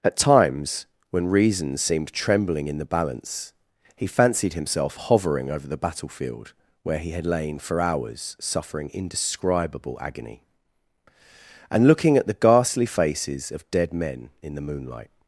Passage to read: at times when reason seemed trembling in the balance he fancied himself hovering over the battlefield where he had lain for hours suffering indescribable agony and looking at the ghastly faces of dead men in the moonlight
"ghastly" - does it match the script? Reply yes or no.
yes